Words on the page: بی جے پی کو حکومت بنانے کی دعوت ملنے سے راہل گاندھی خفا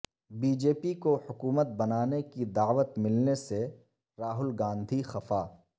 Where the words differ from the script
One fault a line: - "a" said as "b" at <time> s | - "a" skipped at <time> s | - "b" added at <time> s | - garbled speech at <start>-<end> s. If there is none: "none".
none